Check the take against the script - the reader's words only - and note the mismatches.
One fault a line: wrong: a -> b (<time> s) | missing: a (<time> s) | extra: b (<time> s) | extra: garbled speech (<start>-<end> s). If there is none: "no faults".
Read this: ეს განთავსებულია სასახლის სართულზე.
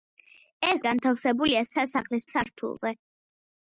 no faults